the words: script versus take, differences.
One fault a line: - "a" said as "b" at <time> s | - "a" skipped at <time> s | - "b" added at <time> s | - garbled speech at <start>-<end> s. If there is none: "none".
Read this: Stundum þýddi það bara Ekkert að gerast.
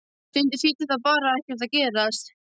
none